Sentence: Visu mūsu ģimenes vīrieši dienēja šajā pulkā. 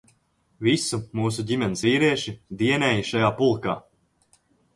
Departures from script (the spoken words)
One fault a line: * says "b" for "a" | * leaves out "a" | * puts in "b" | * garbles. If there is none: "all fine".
all fine